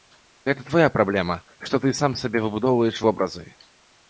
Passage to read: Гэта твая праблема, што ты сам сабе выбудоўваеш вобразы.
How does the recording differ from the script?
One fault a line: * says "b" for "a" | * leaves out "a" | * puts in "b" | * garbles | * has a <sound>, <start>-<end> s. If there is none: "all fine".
all fine